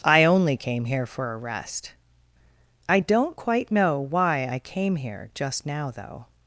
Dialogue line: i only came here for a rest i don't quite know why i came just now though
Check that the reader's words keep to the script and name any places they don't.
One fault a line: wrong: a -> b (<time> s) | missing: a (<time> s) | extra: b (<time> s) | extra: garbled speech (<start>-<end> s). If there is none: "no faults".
extra: here (5.0 s)